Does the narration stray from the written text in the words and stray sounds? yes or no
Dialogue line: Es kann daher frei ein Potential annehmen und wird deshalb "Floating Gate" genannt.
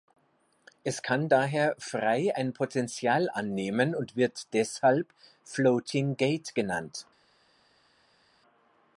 no